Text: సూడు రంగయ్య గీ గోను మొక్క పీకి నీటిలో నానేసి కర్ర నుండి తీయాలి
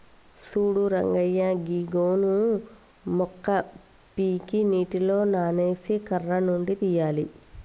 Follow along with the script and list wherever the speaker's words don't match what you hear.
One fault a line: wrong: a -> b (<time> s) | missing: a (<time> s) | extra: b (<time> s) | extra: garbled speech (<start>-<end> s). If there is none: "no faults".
no faults